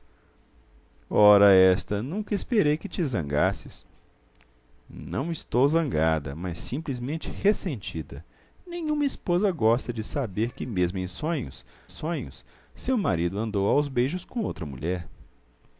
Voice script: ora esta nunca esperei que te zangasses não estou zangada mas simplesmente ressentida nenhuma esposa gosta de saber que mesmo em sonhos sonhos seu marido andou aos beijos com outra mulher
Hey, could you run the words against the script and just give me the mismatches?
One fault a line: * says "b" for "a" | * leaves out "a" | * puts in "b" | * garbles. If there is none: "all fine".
all fine